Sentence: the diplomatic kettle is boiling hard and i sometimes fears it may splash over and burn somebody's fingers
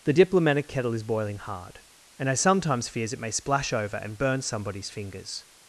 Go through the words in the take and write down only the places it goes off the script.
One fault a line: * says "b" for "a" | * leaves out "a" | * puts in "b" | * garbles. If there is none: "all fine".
all fine